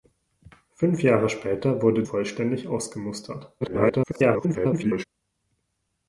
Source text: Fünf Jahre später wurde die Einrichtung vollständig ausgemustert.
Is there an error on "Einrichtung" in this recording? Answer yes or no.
yes